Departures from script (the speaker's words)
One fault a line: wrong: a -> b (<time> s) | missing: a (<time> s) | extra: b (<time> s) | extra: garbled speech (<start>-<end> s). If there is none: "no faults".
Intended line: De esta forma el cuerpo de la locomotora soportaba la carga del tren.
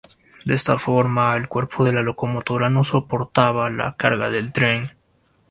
extra: no (2.7 s)